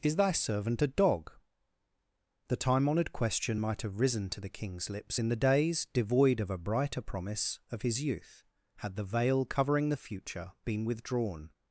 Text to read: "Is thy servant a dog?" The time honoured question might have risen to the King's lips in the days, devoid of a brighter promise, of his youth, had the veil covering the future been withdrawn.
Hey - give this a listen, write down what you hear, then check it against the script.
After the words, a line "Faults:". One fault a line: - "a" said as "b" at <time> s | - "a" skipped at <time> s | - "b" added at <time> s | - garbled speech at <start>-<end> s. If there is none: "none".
"Is thy servant a dog?" The time honoured question might have risen to the King's lips in the days, devoid of a brighter promise, of his youth, had the veil covering the future been withdrawn.
Faults:
none